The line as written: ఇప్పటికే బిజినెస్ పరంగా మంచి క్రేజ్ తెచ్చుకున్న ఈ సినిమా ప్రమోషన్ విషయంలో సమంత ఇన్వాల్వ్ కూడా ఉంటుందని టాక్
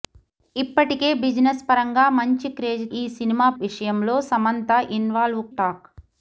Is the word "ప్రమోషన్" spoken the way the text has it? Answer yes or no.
no